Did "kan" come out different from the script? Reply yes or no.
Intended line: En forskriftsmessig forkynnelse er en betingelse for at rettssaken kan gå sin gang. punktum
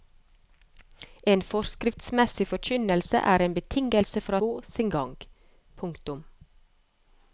yes